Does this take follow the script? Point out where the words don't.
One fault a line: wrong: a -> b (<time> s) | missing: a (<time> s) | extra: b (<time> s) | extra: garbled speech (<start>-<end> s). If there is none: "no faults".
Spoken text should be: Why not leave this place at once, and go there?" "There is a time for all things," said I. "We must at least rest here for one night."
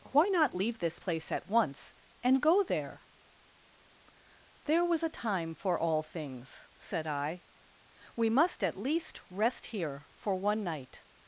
wrong: is -> was (4.8 s)